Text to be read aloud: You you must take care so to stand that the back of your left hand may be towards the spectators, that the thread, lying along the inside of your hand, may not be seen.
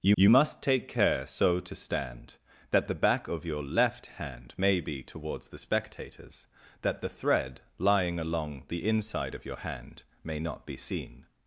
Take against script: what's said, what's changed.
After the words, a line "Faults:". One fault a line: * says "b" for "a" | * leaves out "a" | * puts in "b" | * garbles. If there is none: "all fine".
You you must take care so to stand that the back of your left hand may be towards the spectators, that the thread, lying along the inside of your hand, may not be seen.
Faults:
all fine